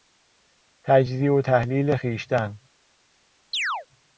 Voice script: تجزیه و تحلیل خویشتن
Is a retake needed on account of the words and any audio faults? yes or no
yes